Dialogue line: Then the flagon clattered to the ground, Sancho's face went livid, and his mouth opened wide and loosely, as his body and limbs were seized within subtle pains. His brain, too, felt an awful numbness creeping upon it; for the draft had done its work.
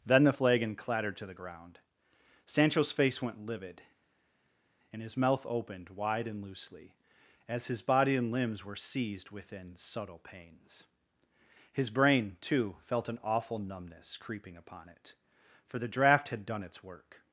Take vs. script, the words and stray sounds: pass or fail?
pass